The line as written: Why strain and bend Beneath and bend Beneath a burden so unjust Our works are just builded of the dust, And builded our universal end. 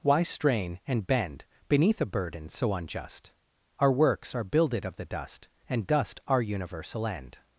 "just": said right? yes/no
no